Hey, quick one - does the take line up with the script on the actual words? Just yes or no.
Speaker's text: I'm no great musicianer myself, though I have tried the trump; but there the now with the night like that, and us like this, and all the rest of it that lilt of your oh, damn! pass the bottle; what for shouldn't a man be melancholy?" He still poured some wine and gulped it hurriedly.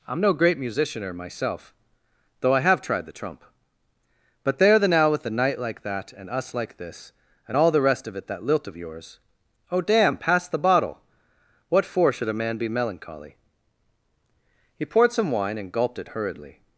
no